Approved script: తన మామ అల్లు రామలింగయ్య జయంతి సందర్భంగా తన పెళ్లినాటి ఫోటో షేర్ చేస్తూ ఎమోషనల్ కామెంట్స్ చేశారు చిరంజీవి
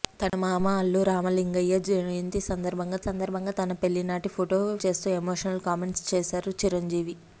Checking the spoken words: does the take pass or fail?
fail